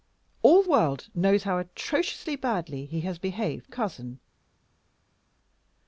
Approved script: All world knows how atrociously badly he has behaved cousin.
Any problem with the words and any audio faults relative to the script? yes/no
no